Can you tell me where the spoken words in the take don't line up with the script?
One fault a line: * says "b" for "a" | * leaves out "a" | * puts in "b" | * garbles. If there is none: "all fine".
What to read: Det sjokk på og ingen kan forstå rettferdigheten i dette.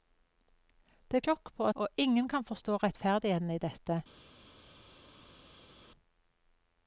all fine